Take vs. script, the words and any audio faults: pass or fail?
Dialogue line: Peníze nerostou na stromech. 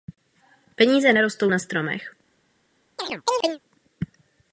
fail